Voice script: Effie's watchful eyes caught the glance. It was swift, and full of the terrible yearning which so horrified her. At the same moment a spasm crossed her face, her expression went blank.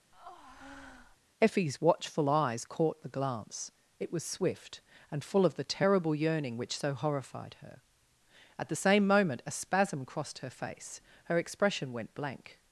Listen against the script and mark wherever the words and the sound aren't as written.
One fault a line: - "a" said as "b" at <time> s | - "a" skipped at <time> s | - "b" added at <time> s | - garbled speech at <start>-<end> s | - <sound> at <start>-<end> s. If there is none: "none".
- breath at 0.1-1.2 s